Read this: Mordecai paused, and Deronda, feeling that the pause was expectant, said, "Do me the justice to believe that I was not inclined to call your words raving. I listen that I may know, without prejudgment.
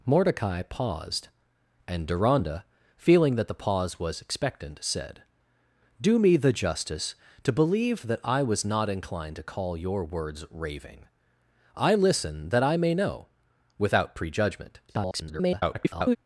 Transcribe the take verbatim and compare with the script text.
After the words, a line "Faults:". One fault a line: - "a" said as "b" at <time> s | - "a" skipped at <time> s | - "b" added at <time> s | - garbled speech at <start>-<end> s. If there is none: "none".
Mordecai paused, and Deronda, feeling that the pause was expectant, said, "Do me the justice to believe that I was not inclined to call your words raving. I listen that I may know, without prejudgment. [garbled]
Faults:
- garbled speech at 14.9-16.2 s